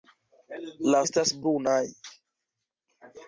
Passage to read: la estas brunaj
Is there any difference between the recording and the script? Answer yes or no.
no